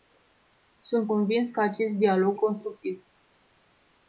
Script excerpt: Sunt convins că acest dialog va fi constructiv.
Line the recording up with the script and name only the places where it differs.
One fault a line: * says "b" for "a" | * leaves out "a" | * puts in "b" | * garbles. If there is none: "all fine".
* leaves out "va fi"